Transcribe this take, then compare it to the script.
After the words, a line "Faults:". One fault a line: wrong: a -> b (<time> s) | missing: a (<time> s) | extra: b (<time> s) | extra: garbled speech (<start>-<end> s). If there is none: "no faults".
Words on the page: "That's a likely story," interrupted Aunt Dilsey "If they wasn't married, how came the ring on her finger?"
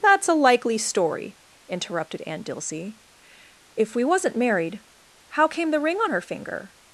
"That's a likely story," interrupted Aunt Dilsey "If we wasn't married, how came the ring on her finger?"
Faults:
wrong: they -> we (4.0 s)